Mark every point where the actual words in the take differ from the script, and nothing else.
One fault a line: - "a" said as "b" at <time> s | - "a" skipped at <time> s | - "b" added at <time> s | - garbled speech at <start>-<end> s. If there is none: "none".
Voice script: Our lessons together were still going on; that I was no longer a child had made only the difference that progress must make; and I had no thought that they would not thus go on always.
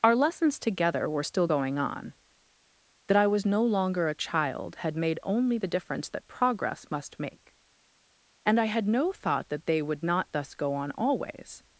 none